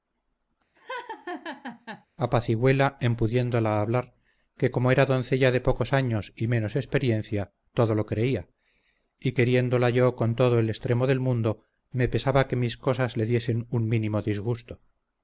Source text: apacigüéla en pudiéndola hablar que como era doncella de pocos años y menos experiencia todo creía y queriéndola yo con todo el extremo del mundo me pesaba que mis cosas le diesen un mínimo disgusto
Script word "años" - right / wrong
right